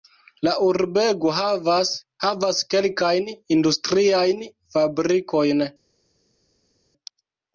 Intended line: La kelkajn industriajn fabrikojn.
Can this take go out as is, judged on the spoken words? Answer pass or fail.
fail